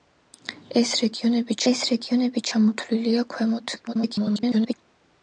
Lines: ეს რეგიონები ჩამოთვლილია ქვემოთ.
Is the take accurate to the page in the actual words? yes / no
no